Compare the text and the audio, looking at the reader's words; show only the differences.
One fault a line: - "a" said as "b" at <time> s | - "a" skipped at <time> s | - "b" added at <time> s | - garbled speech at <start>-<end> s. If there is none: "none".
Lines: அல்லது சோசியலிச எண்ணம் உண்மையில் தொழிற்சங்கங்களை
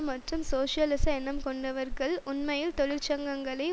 - "அல்லது" said as "மற்றும்" at 0.1 s
- "கொண்டவர்கள்" added at 1.4 s